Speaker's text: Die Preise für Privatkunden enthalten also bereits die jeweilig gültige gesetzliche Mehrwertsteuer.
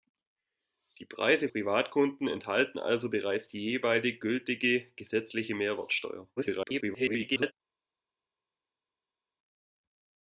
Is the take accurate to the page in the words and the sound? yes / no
no